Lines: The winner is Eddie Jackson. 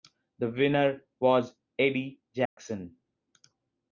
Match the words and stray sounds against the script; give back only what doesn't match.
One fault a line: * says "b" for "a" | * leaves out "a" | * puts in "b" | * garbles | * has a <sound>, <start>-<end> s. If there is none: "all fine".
* says "was" for "is"
* has a dropout, 2.5-2.6 s